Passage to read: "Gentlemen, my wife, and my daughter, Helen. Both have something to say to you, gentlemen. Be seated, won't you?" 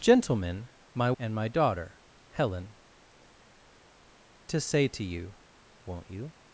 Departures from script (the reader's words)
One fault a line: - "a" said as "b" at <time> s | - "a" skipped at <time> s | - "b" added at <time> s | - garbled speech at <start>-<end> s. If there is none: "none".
- "wife" skipped at 1.1 s
- "Both have something" skipped at 2.7 s
- "gentlemen Be seated" skipped at 5.3 s